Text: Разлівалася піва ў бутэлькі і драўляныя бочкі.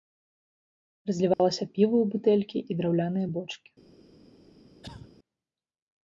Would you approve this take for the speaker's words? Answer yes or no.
yes